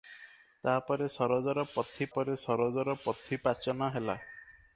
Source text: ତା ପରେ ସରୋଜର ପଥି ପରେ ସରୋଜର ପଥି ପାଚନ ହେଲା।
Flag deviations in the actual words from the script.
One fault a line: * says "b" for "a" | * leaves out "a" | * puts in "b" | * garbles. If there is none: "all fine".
all fine